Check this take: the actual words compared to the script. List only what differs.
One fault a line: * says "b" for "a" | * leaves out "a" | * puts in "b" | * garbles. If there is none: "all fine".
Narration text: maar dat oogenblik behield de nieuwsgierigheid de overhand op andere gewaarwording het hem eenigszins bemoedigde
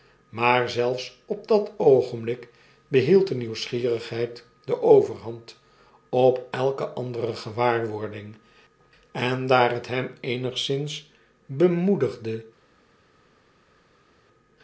* puts in "zelfs op"
* puts in "elke"
* puts in "en daar"